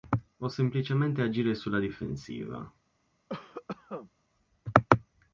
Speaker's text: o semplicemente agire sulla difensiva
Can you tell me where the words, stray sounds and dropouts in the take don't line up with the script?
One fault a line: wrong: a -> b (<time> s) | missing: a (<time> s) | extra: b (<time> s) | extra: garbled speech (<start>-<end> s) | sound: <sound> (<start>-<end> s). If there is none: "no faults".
sound: cough (3.3-4.1 s)